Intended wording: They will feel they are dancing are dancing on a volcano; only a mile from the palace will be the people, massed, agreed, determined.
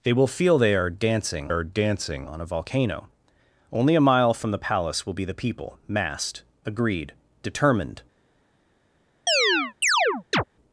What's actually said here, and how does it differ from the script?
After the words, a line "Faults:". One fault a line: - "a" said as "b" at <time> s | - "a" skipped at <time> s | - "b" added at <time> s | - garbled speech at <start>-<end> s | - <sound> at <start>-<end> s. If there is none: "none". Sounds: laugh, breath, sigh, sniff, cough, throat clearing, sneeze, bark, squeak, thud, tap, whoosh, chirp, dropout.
They will feel they are dancing are dancing on a volcano; only a mile from the palace will be the people, massed, agreed, determined.
Faults:
- chirp at 9.3-10.4 s